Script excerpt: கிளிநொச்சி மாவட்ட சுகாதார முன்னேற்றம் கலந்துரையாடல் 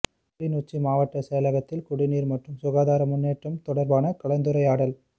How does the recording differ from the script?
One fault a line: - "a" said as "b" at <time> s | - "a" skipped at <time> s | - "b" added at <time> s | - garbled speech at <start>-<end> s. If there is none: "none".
- "செயலகத்தில் குடிநீர் மற்றும்" added at 1.3 s
- "தொடர்பான" added at 3.6 s